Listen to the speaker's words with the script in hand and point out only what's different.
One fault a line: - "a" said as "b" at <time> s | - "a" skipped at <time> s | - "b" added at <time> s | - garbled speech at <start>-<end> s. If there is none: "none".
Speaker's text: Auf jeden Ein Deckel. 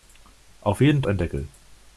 none